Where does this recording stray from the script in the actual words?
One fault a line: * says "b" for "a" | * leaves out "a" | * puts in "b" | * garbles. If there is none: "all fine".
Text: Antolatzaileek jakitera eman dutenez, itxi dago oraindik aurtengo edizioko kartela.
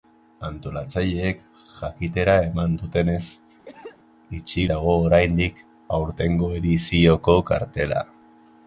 all fine